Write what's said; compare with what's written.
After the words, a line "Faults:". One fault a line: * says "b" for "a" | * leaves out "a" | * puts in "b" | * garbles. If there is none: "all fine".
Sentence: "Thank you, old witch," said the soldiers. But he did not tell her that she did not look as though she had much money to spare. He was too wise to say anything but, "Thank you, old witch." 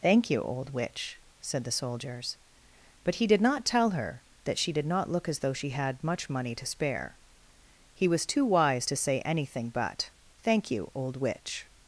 "Thank you, old witch," said the soldiers. But he did not tell her that she did not look as though she had much money to spare. He was too wise to say anything but, "Thank you, old witch."
Faults:
all fine